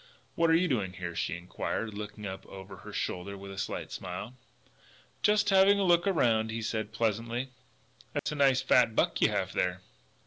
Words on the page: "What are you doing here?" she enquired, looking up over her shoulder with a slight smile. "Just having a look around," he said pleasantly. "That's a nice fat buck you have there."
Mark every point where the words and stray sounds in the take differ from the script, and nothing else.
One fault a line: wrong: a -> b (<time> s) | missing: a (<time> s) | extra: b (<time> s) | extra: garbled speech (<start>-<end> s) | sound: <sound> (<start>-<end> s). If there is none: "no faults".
sound: dropout (8.2-8.3 s)